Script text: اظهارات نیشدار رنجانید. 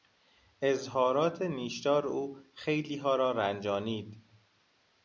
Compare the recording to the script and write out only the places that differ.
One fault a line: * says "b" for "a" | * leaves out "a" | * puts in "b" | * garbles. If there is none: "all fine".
* puts in "او خیلیها را"